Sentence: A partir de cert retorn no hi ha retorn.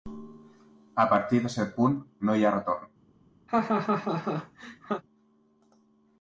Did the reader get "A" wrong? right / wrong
right